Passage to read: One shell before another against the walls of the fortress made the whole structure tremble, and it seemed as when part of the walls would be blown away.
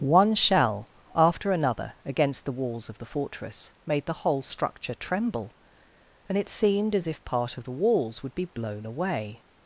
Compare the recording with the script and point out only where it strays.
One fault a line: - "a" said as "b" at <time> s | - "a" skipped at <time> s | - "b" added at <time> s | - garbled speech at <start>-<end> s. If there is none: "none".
- "before" said as "after" at 1.1 s
- "when" said as "if" at 7.0 s